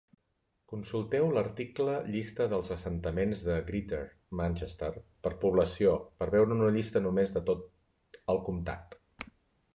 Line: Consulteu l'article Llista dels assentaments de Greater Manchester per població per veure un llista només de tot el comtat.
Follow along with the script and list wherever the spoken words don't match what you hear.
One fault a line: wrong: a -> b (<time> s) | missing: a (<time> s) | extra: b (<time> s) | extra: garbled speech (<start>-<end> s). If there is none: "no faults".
wrong: un -> una (6.6 s)